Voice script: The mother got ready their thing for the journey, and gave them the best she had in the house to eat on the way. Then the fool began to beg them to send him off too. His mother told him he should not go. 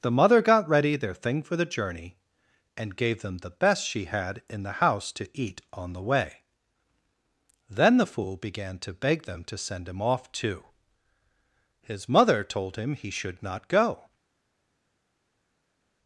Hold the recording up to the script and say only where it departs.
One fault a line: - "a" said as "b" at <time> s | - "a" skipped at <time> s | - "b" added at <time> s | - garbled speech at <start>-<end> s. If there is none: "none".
none